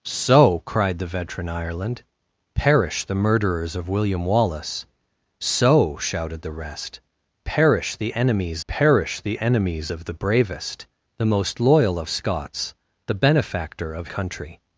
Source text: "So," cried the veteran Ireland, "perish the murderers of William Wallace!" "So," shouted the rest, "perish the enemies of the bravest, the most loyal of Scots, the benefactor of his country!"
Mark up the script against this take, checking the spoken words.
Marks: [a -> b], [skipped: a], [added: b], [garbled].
"So," cried the veteran Ireland, "perish the murderers of William Wallace!" "So," shouted the rest, "perish the enemies [added: perish the enemies] of the bravest, the most loyal of Scots, the benefactor of [skipped: his] country!"